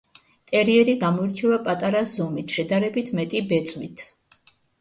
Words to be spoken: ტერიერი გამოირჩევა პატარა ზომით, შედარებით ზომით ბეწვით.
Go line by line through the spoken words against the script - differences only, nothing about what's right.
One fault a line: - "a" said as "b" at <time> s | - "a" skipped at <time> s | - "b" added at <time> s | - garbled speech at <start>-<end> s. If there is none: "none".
- "ზომით" said as "მეტი" at 3.2 s